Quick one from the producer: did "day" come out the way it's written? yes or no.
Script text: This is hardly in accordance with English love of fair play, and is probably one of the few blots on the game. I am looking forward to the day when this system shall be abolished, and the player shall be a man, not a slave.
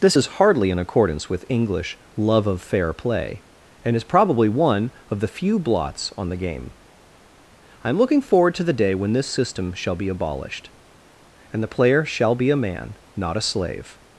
yes